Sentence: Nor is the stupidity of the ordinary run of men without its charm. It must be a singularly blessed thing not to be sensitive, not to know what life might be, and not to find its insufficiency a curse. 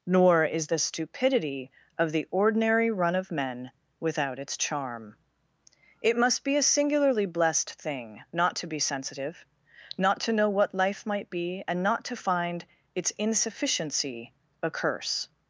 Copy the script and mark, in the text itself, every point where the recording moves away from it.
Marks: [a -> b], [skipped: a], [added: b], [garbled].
Nor is the stupidity of the ordinary run of men without its charm. It must be a singularly blessed thing not to be sensitive, not to know what life might be, and not to find its insufficiency a curse.